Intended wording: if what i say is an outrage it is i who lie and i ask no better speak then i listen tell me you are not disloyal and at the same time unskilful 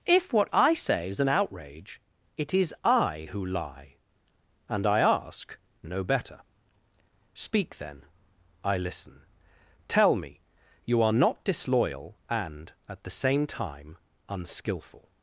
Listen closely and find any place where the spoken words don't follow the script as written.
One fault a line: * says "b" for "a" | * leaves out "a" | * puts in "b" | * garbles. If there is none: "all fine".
all fine